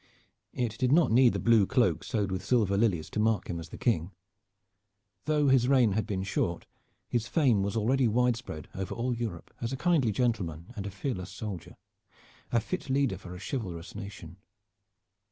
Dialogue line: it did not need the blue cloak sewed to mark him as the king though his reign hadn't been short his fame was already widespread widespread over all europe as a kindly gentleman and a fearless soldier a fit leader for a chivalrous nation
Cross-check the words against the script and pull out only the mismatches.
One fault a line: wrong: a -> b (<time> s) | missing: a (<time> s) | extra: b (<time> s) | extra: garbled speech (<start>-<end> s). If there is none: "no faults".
extra: with silver lilies (2.3 s)
wrong: hadn't -> had (5.9 s)
missing: widespread (8.7 s)